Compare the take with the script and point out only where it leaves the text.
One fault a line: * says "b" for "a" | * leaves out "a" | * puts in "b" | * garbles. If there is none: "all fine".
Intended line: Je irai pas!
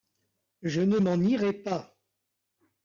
* puts in "ne m'en"